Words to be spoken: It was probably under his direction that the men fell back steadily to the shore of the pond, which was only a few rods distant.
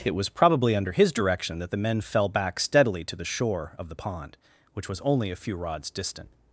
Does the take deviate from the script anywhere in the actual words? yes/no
no